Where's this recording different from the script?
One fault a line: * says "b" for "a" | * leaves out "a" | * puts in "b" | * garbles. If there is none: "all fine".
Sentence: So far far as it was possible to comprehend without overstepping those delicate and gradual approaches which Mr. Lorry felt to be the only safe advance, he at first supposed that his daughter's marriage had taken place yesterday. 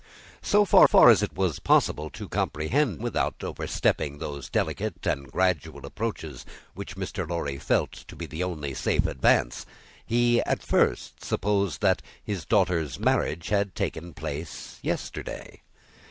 all fine